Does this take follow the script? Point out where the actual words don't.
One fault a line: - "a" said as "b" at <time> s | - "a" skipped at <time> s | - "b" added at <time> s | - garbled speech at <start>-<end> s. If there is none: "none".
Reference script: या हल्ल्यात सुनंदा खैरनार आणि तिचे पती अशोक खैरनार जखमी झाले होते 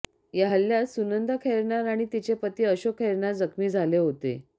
none